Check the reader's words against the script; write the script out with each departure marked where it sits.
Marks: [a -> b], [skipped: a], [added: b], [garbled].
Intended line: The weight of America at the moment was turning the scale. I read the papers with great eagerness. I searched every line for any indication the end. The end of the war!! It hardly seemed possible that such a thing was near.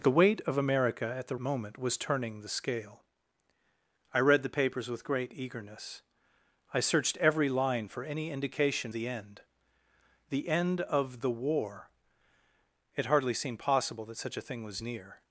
The weight of America at the moment was turning the scale. I read the papers with great eagerness. I searched every line for any indication the end. The end of the war!! It hardly seemed possible that such a thing was near.